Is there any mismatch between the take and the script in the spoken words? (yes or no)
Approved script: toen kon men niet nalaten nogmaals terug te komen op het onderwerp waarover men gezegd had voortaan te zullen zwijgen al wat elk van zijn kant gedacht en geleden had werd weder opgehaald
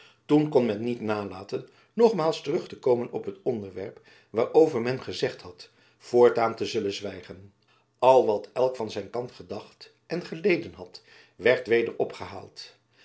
no